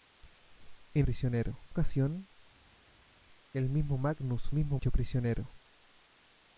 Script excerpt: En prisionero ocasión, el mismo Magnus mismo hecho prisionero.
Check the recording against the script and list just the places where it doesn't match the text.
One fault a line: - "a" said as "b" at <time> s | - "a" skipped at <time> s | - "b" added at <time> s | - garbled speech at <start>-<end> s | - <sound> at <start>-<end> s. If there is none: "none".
none